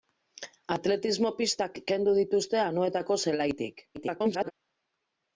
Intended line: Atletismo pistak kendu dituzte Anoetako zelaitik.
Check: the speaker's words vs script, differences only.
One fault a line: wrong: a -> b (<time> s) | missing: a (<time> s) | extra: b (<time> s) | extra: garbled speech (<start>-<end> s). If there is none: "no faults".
extra: garbled speech (3.9-4.5 s)